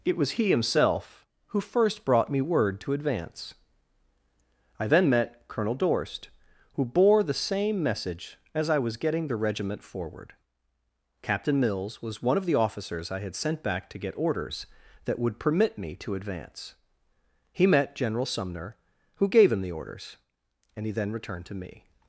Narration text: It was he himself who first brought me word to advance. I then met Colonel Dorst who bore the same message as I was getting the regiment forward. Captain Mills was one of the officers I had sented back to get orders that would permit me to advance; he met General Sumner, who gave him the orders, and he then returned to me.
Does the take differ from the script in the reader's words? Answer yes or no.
yes